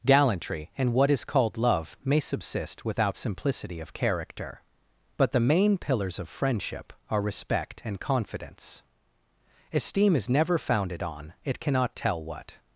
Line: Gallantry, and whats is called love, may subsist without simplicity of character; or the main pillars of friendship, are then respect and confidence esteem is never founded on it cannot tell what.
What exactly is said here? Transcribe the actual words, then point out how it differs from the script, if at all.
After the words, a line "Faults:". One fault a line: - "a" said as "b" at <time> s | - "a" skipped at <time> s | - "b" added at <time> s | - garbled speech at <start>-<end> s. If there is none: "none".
Gallantry, and what is called love, may subsist without simplicity of character; but the main pillars of friendship, are respect and confidence esteem is never founded on it cannot tell what.
Faults:
- "whats" said as "what" at 0.9 s
- "or" said as "but" at 5.2 s
- "then" skipped at 7.2 s